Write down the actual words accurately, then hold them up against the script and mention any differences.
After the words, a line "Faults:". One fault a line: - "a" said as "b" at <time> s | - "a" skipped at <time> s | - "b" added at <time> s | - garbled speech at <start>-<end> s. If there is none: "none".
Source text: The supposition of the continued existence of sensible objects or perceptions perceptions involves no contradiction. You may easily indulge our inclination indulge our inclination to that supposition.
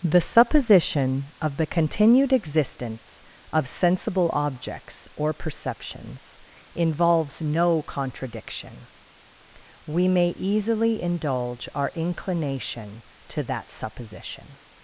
The supposition of the continued existence of sensible objects or perceptions involves no contradiction. We may easily indulge our inclination to that supposition.
Faults:
- "perceptions" skipped at 6.4 s
- "You" said as "We" at 9.9 s
- "indulge our inclination" skipped at 13.0 s